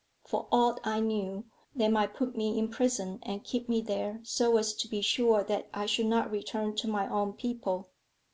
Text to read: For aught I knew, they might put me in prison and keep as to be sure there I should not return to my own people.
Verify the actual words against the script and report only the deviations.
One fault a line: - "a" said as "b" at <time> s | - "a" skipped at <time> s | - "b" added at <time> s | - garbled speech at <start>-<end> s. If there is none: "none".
- "me there so" added at 3.7 s
- "there" said as "that" at 5.4 s